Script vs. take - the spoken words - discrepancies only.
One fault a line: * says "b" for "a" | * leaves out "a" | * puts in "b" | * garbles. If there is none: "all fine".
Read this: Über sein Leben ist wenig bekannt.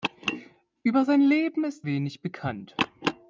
all fine